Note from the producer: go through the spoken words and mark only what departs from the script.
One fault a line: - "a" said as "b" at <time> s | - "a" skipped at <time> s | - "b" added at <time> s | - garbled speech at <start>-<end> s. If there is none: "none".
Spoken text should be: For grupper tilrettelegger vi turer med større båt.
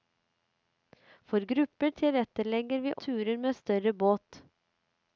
none